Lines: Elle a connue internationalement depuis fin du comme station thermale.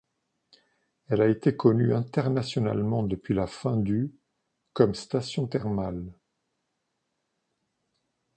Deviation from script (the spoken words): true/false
true